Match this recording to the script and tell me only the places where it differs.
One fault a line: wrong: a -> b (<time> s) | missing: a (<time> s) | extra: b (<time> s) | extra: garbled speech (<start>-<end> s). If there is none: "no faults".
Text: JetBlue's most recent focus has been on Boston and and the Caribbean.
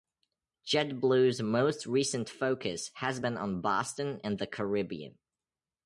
missing: and (4.4 s)